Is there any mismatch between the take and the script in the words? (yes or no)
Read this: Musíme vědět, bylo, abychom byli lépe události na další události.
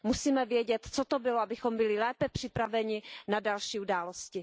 yes